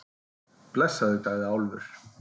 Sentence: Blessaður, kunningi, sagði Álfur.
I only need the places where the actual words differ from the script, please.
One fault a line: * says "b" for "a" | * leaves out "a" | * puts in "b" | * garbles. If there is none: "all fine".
* leaves out "kunningi"